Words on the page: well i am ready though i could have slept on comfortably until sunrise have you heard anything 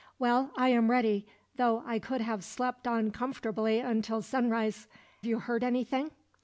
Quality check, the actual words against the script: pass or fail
fail